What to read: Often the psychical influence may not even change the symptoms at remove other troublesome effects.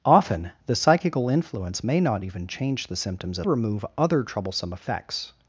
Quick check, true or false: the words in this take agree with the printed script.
true